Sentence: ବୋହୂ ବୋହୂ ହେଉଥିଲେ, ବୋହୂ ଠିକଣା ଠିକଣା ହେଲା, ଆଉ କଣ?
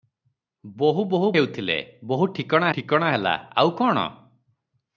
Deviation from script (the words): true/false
false